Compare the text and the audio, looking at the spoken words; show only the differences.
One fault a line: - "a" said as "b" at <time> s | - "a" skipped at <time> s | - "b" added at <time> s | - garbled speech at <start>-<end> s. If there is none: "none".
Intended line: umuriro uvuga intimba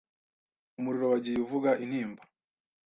- "wagiye" added at 1.1 s